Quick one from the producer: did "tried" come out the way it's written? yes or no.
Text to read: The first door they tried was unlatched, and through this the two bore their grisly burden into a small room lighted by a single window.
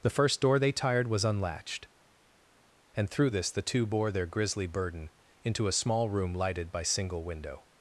no